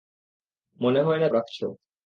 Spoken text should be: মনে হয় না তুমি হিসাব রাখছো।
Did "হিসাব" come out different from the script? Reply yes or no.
yes